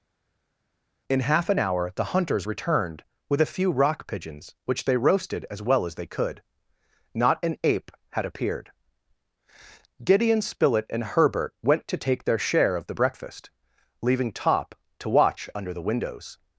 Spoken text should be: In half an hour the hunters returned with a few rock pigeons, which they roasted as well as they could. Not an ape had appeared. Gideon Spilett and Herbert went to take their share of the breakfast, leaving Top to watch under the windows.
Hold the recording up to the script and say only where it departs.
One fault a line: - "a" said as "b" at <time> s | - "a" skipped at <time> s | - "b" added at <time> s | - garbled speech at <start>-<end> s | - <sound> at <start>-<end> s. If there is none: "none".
none